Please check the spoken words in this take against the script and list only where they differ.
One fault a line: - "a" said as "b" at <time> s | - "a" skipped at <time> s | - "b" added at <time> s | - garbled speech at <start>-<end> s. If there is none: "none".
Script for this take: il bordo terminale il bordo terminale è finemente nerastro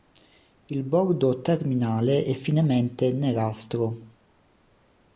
- "il bordo terminale" skipped at 2.2 s